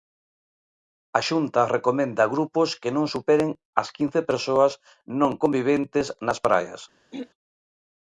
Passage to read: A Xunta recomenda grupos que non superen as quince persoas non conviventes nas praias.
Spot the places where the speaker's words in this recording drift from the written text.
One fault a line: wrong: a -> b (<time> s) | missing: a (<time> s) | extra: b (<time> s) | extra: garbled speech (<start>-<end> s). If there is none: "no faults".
no faults